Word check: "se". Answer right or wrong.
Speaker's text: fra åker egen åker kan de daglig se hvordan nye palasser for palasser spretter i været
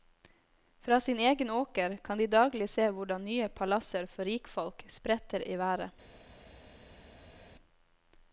right